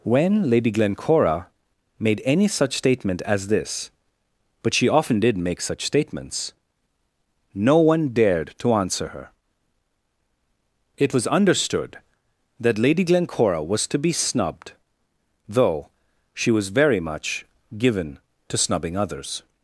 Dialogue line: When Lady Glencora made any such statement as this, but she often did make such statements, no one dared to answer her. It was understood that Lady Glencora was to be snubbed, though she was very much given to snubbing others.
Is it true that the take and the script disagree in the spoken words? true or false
false